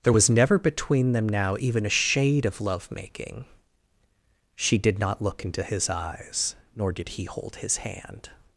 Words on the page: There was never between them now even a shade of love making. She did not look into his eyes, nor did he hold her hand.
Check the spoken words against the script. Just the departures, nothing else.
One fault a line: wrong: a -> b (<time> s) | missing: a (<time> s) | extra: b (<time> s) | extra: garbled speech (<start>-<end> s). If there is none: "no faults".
wrong: her -> his (7.6 s)